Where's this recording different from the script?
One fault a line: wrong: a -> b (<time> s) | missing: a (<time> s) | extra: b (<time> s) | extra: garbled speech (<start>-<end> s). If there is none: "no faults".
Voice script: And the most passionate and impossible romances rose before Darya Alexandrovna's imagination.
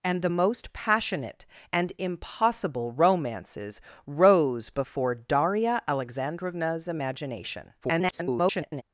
extra: garbled speech (7.8-8.8 s)